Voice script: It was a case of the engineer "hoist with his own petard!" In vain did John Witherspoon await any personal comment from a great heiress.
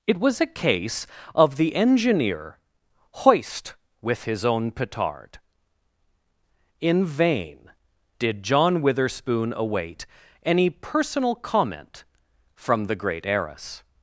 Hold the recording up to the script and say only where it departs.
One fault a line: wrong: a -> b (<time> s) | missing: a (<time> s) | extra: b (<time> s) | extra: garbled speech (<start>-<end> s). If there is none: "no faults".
wrong: a -> the (12.8 s)